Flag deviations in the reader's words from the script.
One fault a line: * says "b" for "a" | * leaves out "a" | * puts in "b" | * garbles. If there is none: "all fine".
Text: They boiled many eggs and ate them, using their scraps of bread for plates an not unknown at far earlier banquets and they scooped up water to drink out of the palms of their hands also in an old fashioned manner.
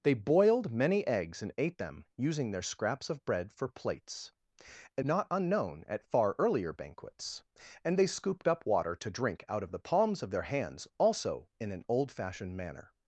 all fine